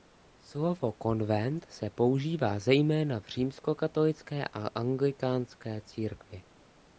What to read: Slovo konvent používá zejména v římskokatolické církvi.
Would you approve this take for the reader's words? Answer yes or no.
no